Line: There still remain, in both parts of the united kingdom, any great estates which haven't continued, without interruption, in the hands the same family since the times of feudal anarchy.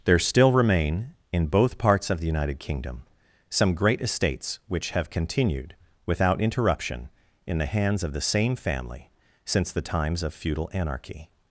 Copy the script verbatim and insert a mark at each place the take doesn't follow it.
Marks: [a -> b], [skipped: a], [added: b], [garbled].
There still remain, in both parts of the united kingdom, [any -> some] great estates which [haven't -> have] continued, without interruption, in the hands [added: of] the same family since the times of feudal anarchy.